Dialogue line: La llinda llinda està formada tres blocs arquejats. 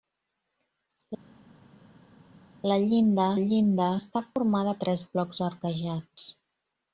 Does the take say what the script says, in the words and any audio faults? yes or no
yes